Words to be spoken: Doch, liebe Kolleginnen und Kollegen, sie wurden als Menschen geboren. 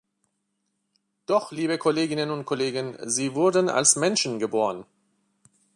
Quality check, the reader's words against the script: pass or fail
pass